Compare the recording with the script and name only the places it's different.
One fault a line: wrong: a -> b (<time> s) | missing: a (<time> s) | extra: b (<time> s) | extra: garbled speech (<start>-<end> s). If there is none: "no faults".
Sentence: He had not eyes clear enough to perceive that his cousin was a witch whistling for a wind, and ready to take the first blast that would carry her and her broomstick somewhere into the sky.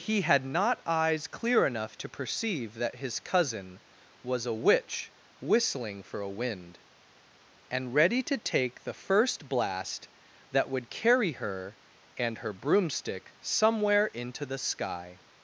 no faults